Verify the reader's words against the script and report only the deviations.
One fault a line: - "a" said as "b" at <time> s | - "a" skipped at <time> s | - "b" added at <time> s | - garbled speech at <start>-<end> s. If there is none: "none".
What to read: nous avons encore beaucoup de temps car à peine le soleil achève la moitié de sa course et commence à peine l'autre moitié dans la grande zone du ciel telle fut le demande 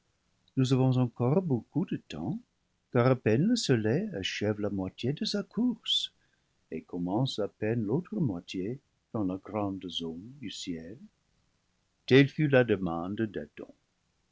- "le" said as "la" at 12.5 s